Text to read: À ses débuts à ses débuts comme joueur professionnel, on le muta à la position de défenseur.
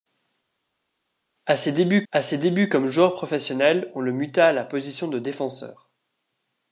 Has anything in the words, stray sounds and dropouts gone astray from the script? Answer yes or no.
no